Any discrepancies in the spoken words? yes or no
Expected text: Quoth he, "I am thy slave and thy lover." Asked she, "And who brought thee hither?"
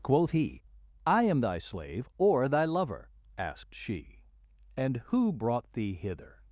yes